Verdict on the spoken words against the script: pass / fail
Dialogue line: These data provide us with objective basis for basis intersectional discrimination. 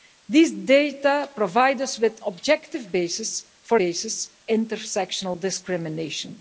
pass